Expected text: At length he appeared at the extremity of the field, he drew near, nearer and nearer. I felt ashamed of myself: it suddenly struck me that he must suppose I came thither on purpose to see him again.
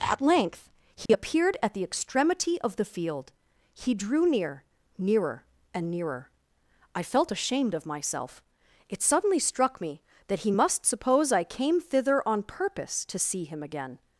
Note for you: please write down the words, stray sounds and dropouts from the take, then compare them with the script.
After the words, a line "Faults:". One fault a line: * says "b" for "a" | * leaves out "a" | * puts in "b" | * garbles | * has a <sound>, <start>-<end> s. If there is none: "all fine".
At length he appeared at the extremity of the field, he drew near, nearer and nearer. I felt ashamed of myself: it suddenly struck me that he must suppose I came thither on purpose to see him again.
Faults:
* has a dropout, 1.1-1.1 s